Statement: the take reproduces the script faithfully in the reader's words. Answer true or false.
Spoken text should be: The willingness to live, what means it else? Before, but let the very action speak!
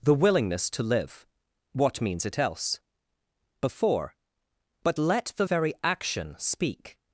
true